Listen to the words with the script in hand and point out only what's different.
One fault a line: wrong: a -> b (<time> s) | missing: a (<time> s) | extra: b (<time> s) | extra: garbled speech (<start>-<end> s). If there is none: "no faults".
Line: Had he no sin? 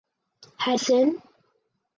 missing: he no (0.8 s)